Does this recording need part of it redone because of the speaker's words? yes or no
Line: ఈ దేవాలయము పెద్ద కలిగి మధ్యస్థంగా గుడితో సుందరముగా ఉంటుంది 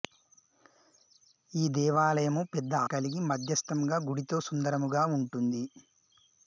no